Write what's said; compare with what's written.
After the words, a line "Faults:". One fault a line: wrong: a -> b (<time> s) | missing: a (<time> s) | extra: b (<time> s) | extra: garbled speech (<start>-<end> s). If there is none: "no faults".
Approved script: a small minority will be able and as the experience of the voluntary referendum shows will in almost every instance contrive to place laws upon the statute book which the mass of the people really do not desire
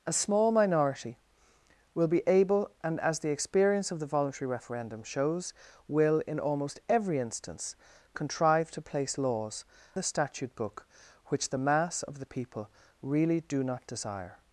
a small minority will be able and as the experience of the voluntary referendum shows will in almost every instance contrive to place laws the statute book which the mass of the people really do not desire
Faults:
missing: upon (9.6 s)